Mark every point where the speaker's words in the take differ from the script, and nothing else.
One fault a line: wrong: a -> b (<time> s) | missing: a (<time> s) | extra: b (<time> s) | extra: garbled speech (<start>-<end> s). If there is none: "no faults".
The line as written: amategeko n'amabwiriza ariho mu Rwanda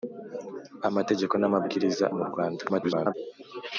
missing: ariho (2.0 s)
extra: garbled speech (2.7-3.1 s)